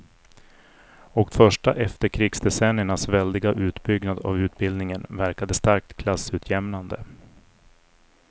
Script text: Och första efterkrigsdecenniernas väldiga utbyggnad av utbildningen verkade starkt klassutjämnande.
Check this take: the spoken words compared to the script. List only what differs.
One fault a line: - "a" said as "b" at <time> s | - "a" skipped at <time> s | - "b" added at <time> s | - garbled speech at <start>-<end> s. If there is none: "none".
none